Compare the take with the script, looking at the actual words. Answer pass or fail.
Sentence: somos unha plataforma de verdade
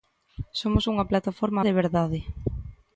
pass